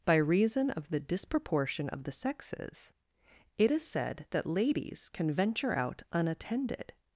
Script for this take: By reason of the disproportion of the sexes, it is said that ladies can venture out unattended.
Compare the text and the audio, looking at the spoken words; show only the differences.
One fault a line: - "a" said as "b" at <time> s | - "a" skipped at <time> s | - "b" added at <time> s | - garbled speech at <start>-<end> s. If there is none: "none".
none